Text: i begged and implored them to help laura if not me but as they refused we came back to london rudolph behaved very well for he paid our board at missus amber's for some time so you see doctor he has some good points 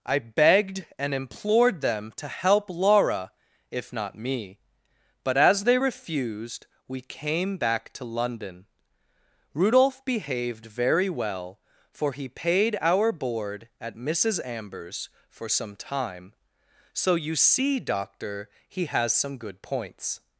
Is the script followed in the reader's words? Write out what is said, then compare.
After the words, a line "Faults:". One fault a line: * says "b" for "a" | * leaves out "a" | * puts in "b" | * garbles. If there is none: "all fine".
i begged and implored them to help laura if not me but as they refused we came back to london rudolph behaved very well for he paid our board at missus amber's for some time so you see doctor he has some good points
Faults:
all fine